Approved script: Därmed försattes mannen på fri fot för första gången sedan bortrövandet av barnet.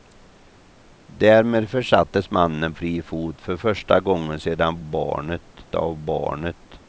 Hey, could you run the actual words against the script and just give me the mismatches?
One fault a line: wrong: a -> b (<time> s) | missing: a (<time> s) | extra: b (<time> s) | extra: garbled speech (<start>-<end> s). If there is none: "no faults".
missing: på (2.7 s)
wrong: bortrövandet -> barnet (4.8 s)